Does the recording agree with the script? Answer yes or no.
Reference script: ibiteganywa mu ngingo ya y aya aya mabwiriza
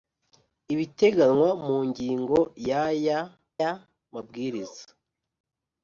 yes